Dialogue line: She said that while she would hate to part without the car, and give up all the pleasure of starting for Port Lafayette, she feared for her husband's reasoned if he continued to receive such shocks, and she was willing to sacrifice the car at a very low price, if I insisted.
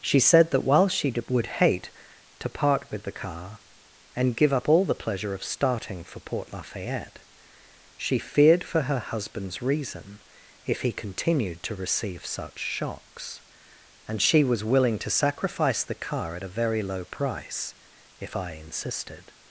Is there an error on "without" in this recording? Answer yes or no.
yes